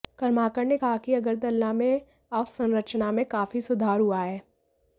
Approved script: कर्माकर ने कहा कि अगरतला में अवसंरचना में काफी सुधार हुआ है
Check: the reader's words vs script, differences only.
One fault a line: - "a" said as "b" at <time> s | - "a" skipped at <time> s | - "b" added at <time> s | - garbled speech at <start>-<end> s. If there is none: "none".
none